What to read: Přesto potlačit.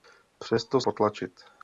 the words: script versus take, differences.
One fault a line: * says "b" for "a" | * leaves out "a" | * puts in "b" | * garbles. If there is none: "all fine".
all fine